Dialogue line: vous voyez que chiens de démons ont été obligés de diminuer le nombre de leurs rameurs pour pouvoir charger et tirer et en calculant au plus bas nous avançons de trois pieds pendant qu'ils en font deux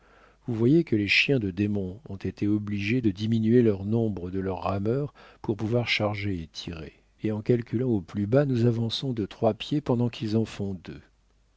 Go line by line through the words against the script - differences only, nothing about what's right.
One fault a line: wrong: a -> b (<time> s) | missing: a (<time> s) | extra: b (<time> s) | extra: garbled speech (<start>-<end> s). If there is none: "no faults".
extra: les (0.9 s)